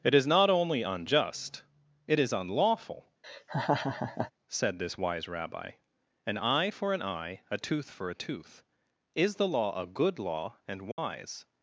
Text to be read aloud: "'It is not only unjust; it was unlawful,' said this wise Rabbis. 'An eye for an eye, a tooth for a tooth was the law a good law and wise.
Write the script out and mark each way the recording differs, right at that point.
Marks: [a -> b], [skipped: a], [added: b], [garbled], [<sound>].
"'It is not only unjust; it [was -> is] unlawful,' [laugh] said this wise [Rabbis. -> Rabbi] 'An eye for an eye, a tooth for a tooth [was -> is] the law a good law and wise. [dropout]